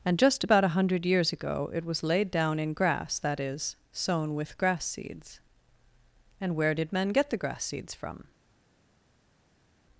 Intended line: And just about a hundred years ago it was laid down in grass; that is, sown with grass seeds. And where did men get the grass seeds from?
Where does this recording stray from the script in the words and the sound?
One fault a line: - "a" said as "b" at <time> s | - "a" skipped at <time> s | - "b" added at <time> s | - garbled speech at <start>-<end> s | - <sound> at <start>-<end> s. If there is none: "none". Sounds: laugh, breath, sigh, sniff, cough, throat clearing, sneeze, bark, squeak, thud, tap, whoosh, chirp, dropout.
none